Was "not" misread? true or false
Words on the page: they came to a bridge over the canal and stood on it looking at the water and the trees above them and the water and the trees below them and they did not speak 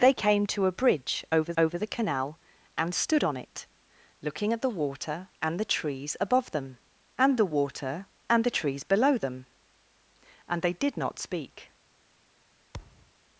false